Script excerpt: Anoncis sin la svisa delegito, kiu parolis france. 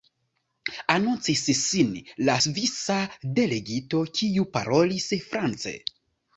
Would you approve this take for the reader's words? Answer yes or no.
yes